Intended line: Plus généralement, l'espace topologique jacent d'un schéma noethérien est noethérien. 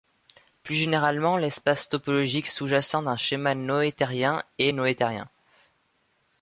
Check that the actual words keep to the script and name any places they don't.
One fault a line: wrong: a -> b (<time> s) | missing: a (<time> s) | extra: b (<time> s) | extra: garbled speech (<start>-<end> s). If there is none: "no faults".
extra: sous (2.5 s)